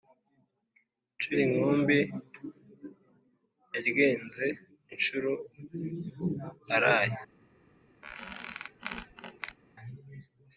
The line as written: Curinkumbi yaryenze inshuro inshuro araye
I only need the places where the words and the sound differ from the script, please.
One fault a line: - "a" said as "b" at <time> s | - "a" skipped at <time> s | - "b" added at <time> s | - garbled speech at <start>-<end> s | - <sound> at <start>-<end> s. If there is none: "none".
- "inshuro" skipped at 5.3 s
- squeak at 8.0-9.6 s